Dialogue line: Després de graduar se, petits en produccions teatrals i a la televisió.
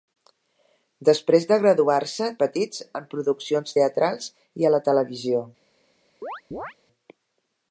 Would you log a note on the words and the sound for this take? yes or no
yes